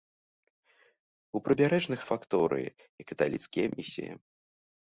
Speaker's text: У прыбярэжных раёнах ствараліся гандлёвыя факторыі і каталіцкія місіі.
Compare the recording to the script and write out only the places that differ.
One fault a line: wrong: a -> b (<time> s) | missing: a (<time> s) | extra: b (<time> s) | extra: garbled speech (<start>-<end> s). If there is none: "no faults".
missing: раёнах ствараліся гандлёвыя (2.0 s)